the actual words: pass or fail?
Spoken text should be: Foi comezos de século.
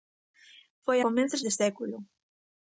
pass